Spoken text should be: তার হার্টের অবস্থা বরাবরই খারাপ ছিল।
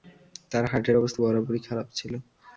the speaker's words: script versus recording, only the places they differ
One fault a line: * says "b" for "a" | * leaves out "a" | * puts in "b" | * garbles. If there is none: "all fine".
all fine